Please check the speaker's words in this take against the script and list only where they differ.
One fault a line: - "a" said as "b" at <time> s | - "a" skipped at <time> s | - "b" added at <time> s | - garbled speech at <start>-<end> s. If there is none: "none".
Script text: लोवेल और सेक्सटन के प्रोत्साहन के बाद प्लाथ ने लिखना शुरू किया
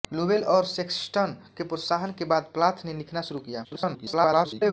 - garbled speech at 3.6-4.7 s